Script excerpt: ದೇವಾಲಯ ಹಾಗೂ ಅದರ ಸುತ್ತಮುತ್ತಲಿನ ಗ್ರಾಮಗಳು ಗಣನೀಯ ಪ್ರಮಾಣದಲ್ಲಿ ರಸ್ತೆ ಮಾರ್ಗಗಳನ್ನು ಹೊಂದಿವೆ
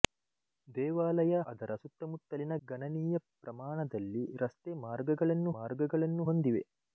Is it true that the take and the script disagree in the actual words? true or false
true